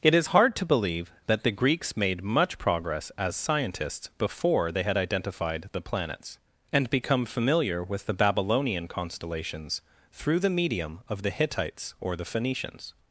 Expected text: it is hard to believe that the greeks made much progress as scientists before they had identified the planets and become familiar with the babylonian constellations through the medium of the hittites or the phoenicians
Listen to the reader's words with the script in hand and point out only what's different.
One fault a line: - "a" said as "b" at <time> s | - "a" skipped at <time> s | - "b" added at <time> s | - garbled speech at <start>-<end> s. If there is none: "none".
none